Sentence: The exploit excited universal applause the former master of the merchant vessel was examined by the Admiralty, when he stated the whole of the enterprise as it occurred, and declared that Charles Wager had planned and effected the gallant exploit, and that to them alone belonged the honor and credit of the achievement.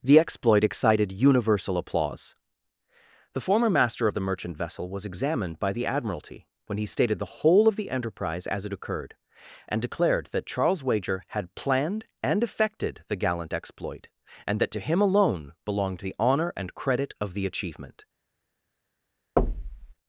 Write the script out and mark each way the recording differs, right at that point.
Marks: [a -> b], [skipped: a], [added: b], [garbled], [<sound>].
The exploit excited universal applause the former master of the merchant vessel was examined by the Admiralty, when he stated the whole of the enterprise as it occurred, and declared that Charles Wager had planned and effected the gallant exploit, and that to [them -> him] alone belonged the honor and credit of the achievement. [thud]